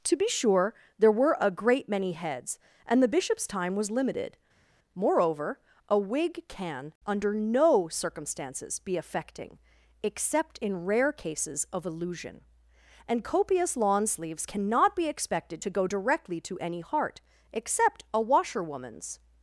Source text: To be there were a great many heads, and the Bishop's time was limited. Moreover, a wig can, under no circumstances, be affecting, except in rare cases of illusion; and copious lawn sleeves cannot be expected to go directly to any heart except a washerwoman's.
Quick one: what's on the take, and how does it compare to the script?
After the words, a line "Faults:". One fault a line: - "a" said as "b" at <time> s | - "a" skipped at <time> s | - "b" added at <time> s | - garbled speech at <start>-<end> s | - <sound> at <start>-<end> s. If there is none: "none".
To be sure there were a great many heads, and the Bishop's time was limited. Moreover, a wig can, under no circumstances, be affecting, except in rare cases of illusion; and copious lawn sleeves cannot be expected to go directly to any heart except a washerwoman's.
Faults:
- "sure" added at 0.3 s